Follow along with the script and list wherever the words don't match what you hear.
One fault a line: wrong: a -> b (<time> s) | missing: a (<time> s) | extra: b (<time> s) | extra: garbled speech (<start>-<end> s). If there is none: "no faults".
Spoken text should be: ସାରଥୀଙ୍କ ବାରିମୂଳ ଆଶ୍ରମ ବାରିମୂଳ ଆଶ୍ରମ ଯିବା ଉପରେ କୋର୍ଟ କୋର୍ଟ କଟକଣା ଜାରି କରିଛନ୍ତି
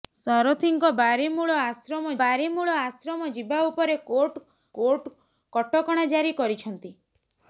no faults